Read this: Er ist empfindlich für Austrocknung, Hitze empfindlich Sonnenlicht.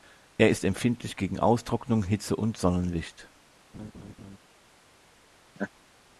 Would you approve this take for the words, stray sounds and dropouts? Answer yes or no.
no